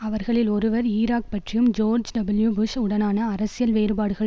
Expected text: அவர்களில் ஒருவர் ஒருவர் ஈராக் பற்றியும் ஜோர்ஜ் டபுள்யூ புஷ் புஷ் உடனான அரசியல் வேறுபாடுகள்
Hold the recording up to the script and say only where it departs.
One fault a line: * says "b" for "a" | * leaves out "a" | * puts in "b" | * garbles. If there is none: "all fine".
* leaves out "ஒருவர்"
* leaves out "புஷ்"